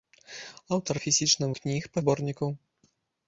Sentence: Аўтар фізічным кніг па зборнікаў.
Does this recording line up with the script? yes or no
yes